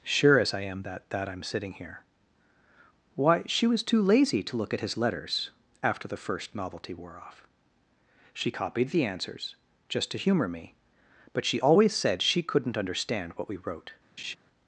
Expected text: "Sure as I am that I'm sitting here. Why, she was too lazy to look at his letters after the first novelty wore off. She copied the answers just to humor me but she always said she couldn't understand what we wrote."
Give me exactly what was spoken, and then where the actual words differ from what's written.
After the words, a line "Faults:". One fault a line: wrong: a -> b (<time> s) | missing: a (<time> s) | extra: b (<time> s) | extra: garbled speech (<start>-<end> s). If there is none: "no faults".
"Sure as I am that that I'm sitting here. Why, she was too lazy to look at his letters after the first novelty wore off. She copied the answers just to humor me but she always said she couldn't understand what we wrote."
Faults:
extra: that (1.1 s)